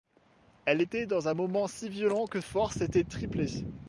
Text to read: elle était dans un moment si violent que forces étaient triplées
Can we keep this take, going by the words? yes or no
yes